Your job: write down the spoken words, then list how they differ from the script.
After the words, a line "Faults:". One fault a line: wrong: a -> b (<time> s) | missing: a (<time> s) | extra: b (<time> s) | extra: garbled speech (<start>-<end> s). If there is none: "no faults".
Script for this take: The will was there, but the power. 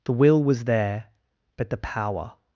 The will was there, but the power.
Faults:
no faults